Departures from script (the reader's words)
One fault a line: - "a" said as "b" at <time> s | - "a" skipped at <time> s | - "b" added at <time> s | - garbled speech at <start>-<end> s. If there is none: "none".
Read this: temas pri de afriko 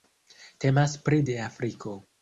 none